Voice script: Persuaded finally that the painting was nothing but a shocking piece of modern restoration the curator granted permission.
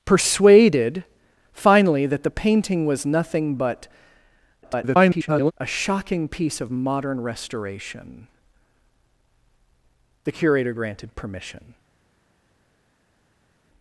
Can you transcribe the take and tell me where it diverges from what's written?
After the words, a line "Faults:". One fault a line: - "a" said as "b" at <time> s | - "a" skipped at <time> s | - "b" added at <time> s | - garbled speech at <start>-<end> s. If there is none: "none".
Persuaded finally that the painting was nothing but [garbled] a shocking piece of modern restoration the curator granted permission.
Faults:
- garbled speech at 4.6-5.5 s